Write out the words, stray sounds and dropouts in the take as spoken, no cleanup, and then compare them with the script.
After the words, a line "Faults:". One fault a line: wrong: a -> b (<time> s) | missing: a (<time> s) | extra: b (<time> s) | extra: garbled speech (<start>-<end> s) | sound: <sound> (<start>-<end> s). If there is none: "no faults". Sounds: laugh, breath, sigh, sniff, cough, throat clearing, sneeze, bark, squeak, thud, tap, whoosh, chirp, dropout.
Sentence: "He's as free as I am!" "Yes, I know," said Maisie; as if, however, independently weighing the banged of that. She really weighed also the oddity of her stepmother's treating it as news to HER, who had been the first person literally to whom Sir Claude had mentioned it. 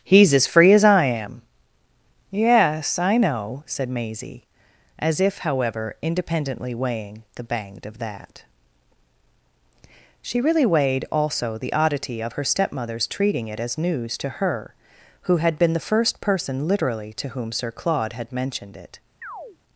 "He's as free as I am!" "Yes, I know," said Maisie; as if, however, independently weighing the banged of that. She really weighed also the oddity of her stepmother's treating it as news to HER, who had been the first person literally to whom Sir Claude had mentioned it.
Faults:
sound: chirp (19.2-19.6 s)